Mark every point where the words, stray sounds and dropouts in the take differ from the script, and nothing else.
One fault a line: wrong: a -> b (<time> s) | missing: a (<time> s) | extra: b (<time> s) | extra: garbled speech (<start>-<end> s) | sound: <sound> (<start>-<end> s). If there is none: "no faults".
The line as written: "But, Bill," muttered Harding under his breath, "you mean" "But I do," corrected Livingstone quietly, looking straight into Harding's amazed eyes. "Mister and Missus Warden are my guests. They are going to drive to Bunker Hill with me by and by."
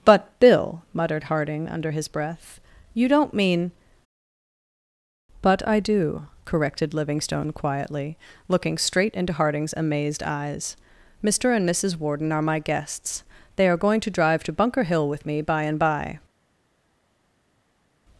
extra: don't (3.1 s)